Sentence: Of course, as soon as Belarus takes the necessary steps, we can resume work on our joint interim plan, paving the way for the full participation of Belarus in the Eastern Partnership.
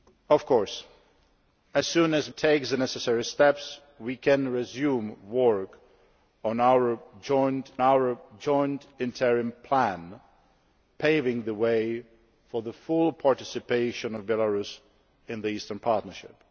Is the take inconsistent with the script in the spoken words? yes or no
yes